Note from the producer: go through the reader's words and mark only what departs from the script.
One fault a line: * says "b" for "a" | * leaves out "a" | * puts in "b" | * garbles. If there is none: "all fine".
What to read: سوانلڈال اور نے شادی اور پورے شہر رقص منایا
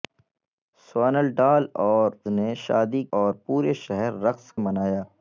all fine